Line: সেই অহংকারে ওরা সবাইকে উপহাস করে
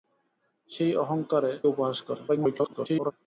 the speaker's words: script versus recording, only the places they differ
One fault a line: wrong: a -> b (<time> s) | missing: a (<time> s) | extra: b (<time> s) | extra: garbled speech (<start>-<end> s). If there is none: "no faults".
missing: ওরা সবাইকে (1.5 s)
extra: garbled speech (2.3-3.1 s)